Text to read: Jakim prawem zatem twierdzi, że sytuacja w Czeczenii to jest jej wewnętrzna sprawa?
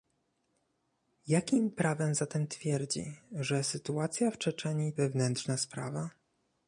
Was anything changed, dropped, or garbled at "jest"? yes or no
yes